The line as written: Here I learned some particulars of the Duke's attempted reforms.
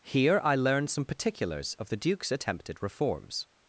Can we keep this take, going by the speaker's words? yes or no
yes